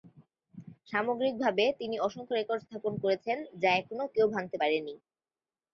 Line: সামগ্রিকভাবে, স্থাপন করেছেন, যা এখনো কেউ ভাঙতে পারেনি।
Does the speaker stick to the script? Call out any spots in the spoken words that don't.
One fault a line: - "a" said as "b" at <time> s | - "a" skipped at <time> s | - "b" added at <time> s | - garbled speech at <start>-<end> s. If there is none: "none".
- "তিনি অসংখ্য রেকর্ড" added at 1.8 s